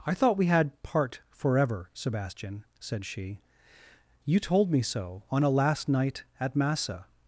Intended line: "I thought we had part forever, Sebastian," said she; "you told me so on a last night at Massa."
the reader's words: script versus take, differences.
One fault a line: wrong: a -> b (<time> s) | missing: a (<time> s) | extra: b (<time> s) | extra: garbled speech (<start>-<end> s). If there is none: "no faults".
no faults